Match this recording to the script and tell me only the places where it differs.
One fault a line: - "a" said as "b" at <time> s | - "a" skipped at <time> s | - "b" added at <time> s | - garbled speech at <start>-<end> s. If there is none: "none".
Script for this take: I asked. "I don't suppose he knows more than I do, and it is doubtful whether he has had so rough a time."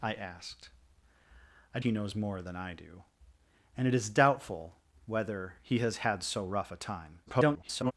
- "don't suppose" skipped at 1.8 s
- garbled speech at 7.3-7.9 s